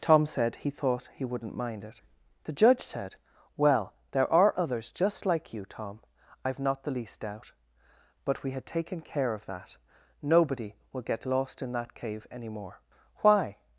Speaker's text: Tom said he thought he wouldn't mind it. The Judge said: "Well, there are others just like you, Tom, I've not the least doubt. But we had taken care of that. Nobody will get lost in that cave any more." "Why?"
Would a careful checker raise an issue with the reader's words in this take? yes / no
no